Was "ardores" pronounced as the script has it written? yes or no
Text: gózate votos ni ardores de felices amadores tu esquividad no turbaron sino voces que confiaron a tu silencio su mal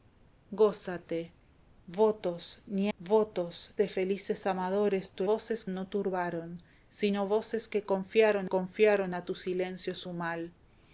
no